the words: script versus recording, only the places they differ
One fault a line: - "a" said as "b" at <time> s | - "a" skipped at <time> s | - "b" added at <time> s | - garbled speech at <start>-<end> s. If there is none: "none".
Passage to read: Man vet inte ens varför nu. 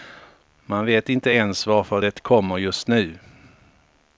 - "det kommer just" added at 2.0 s